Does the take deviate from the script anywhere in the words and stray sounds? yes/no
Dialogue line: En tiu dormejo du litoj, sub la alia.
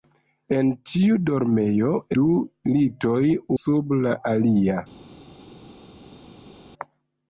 no